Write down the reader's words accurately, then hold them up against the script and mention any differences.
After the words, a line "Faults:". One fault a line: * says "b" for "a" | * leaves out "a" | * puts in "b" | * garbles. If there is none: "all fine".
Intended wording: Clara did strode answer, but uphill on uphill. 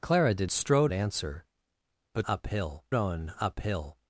Clara did strode answer, but uphill on uphill.
Faults:
all fine